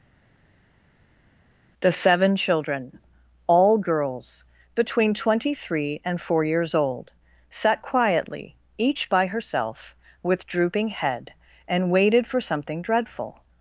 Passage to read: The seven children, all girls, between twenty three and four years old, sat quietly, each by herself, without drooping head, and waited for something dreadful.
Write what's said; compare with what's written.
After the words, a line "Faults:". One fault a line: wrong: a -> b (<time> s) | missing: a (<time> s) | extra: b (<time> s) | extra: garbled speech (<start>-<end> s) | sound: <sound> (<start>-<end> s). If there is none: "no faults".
The seven children, all girls, between twenty three and four years old, sat quietly, each by herself, with drooping head, and waited for something dreadful.
Faults:
wrong: without -> with (10.2 s)